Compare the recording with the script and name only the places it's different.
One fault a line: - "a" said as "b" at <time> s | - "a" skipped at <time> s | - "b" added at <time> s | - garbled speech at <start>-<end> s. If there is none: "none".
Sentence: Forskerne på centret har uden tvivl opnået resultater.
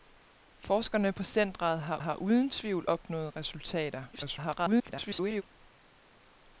- "har" added at 2.0 s
- garbled speech at 4.1-5.4 s